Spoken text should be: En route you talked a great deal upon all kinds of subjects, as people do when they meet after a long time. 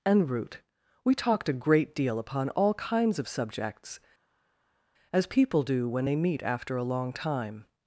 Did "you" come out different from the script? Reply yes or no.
yes